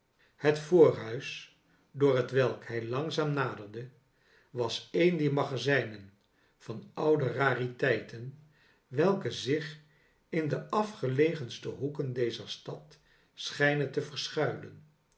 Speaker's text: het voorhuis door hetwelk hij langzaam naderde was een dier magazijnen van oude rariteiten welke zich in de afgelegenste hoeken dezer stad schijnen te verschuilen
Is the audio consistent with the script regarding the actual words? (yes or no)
yes